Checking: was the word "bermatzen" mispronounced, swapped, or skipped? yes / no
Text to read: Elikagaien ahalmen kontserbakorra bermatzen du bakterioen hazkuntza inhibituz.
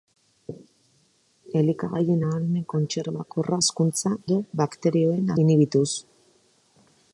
yes